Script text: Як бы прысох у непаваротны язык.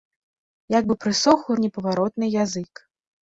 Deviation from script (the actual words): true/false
false